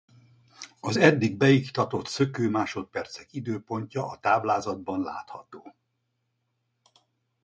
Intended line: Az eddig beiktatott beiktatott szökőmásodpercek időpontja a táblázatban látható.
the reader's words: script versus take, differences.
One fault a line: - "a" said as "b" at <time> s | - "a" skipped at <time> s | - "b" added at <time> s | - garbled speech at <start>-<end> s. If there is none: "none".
- "beiktatott" skipped at 2.1 s